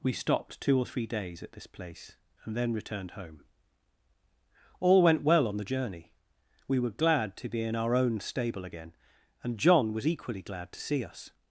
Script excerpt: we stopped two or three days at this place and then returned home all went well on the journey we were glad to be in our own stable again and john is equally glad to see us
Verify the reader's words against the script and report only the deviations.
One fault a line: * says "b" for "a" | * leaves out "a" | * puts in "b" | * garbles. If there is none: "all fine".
* says "was" for "is"